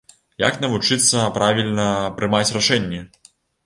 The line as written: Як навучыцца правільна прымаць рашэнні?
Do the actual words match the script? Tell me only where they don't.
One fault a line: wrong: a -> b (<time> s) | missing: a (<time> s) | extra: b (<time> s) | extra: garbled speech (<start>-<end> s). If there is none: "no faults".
no faults